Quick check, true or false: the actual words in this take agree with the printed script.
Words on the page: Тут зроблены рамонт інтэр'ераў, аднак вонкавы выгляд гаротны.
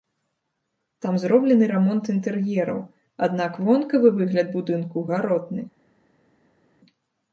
false